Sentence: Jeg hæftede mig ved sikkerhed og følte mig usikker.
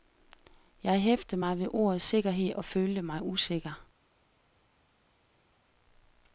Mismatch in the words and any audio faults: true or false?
true